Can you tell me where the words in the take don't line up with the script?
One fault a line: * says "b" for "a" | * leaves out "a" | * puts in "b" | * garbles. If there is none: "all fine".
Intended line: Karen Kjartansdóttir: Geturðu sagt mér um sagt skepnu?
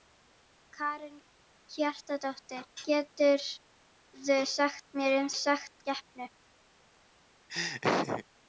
all fine